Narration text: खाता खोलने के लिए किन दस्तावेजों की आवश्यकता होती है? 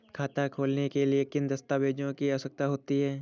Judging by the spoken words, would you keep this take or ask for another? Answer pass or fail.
pass